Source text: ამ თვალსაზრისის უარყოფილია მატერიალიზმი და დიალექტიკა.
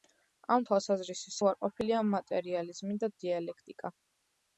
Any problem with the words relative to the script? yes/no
no